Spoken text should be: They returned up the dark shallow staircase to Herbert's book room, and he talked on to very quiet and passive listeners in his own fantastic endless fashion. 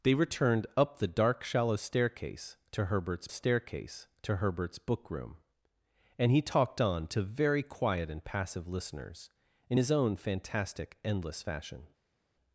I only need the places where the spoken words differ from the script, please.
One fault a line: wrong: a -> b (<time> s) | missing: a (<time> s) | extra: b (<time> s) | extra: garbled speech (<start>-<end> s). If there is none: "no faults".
extra: staircase to Herbert's (3.3 s)